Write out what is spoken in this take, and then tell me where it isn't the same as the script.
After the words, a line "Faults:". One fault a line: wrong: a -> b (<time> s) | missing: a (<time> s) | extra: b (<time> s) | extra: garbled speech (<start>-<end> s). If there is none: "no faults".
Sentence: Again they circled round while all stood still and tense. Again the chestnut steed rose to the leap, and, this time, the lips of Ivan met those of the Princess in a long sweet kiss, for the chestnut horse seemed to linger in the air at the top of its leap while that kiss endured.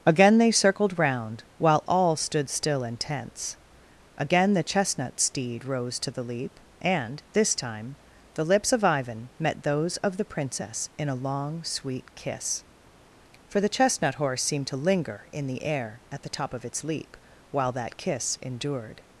Again they circled round while all stood still and tense. Again the chestnut steed rose to the leap, and, this time, the lips of Ivan met those of the Princess in a long sweet kiss, for the chestnut horse seemed to linger in the air at the top of its leap while that kiss endured.
Faults:
no faults